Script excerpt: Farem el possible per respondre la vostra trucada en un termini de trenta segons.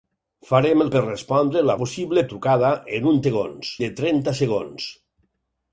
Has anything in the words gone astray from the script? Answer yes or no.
yes